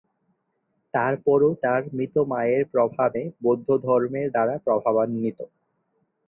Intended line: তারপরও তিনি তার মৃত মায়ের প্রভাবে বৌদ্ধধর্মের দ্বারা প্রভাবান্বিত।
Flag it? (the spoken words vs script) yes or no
yes